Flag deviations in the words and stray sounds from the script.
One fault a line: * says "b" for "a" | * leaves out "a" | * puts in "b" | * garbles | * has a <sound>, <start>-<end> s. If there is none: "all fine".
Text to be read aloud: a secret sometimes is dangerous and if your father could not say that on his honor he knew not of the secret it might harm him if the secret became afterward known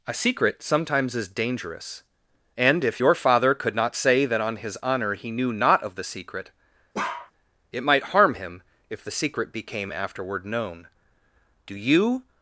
* has a bark, 6.9-7.3 s
* puts in "do you"